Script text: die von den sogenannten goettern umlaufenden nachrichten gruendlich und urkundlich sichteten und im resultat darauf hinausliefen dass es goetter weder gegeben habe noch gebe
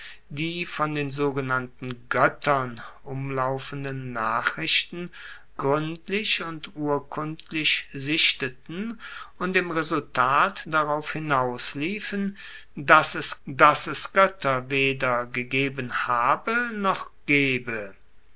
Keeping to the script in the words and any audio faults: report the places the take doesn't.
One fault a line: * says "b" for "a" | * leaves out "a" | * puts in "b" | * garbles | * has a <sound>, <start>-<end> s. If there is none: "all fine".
* puts in "dass es"